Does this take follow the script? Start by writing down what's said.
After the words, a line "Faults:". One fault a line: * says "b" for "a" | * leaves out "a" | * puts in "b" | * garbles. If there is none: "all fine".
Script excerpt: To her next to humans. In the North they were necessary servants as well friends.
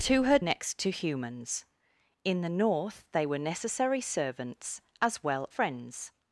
To her next to humans. In the North they were necessary servants as well friends.
Faults:
all fine